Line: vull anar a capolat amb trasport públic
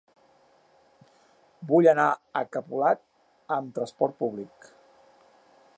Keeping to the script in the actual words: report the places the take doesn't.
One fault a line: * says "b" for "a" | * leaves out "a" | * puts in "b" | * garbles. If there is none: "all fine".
all fine